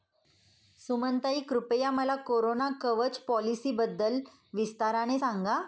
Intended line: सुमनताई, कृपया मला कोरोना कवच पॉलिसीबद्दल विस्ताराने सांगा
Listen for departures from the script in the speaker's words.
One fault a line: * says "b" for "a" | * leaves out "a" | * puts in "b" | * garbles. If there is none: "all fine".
all fine